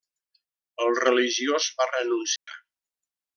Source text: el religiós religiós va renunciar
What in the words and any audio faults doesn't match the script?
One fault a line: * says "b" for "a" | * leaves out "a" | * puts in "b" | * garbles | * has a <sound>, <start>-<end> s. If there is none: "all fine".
* leaves out "religiós"
* has a dropout, 2.4-2.5 s